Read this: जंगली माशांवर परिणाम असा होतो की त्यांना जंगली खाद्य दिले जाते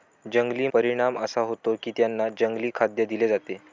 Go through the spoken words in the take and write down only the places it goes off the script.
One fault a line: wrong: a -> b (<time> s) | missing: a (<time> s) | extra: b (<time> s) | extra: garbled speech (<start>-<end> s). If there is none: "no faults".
missing: माशांवर (0.7 s)